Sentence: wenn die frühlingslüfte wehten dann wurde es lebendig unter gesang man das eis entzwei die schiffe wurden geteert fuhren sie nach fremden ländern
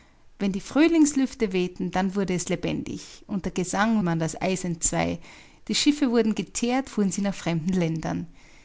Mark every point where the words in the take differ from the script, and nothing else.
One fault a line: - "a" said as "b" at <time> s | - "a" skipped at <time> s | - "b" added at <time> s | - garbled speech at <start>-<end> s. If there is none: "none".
none